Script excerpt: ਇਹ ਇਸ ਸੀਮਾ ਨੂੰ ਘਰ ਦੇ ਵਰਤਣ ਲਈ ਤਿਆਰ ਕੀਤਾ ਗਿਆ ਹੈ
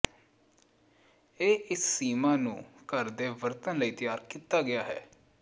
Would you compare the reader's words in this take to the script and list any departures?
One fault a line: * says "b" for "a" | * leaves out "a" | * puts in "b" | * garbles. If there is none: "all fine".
all fine